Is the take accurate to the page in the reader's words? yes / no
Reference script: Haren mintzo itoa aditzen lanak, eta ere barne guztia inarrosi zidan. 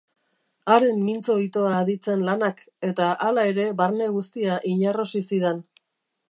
no